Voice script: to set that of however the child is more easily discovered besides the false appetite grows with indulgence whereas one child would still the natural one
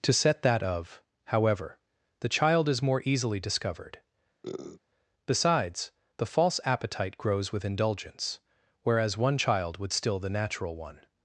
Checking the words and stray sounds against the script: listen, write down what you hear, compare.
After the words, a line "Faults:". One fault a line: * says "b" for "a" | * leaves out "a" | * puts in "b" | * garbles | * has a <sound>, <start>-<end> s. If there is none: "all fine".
to set that of however the child is more easily discovered besides the false appetite grows with indulgence whereas one child would still the natural one
Faults:
* has a sniff, 4.4-4.8 s